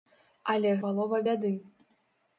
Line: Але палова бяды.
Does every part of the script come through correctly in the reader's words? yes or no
yes